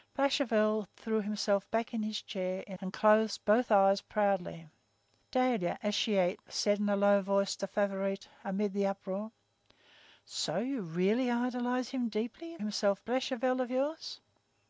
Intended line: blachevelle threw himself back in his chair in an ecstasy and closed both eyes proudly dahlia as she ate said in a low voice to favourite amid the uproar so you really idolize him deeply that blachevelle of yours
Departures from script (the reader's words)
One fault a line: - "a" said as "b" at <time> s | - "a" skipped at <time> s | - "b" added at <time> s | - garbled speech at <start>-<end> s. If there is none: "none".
- "an ecstasy" skipped at 2.8 s
- "that" said as "himself" at 12.6 s